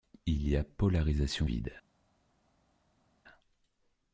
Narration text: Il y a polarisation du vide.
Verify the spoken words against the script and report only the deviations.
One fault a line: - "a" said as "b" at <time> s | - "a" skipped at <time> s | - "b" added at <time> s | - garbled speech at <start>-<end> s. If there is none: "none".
- "du" skipped at 1.5 s